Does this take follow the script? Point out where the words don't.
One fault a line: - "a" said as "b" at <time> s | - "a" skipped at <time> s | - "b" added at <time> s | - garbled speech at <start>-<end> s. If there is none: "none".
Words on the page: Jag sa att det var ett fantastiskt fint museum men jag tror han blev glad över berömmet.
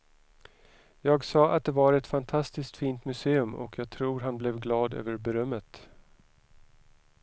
- "men" said as "och" at 3.5 s